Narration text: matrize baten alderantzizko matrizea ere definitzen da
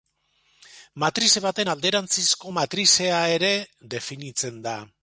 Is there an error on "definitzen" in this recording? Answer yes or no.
no